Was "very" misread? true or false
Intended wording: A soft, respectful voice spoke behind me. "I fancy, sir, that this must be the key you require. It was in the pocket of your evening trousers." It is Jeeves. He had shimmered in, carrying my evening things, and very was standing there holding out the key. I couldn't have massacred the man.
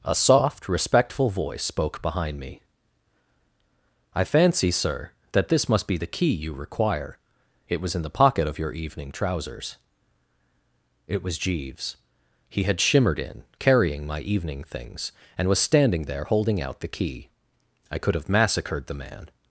true